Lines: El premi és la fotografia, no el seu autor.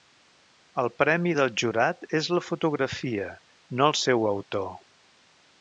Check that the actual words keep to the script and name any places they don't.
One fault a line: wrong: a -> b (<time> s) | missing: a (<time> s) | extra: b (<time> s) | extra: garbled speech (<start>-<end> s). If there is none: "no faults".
extra: del jurat (1.4 s)